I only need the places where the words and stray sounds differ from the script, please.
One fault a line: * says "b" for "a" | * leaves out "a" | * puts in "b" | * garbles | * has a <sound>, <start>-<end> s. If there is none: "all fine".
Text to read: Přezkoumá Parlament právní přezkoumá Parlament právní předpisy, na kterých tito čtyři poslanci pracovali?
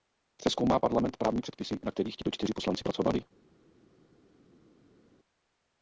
* leaves out "přezkoumá Parlament právní"